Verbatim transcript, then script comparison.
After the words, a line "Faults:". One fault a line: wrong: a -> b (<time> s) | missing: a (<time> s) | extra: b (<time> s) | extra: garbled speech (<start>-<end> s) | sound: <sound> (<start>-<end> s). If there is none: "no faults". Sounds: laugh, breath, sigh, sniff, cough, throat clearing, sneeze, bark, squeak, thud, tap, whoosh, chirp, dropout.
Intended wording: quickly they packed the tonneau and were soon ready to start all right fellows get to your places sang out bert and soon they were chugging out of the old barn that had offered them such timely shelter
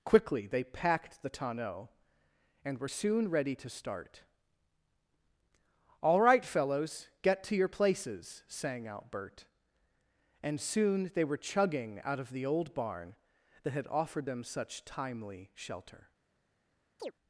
quickly they packed the tonneau and were soon ready to start all right fellows get to your places sang out bert and soon they were chugging out of the old barn that had offered them such timely shelter
Faults:
sound: chirp (17.0-17.1 s)